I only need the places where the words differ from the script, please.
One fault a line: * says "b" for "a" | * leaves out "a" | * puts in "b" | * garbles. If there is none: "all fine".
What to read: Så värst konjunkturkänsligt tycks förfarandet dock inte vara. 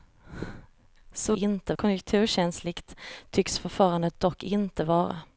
* says "inte" for "värst"